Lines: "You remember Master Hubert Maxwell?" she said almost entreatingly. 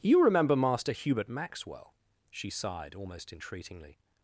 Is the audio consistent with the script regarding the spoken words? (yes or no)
no